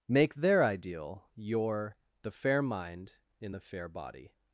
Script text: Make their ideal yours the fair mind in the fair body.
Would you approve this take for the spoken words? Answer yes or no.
no